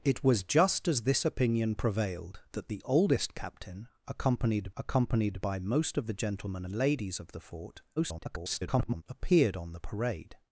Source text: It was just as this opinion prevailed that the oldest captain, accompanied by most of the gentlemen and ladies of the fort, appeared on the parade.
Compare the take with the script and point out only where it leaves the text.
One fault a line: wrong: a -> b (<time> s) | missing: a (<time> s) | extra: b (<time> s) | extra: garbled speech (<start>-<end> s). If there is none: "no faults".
extra: accompanied (4.8 s)
extra: garbled speech (8.0-9.0 s)